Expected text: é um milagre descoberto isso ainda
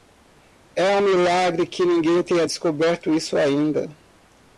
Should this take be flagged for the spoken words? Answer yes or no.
yes